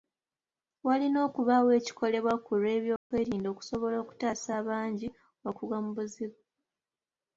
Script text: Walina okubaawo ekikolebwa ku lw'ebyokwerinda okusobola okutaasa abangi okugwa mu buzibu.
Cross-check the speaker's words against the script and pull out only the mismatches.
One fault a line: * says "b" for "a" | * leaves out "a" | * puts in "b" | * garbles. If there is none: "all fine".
all fine